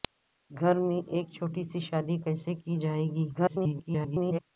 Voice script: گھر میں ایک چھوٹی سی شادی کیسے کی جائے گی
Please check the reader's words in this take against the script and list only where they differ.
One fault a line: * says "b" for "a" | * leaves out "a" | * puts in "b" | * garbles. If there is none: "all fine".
* garbles